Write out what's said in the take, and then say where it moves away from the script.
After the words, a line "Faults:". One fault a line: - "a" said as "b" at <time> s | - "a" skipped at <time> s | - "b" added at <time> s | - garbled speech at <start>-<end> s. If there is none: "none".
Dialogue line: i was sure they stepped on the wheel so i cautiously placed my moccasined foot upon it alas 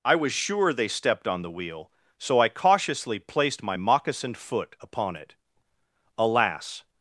i was sure they stepped on the wheel so i cautiously placed my moccasined foot upon it alas
Faults:
none